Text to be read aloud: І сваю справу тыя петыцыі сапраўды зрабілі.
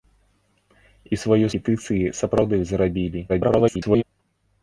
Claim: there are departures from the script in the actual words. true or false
true